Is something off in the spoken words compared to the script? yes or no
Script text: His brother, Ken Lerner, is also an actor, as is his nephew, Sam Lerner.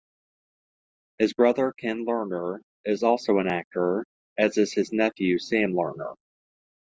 no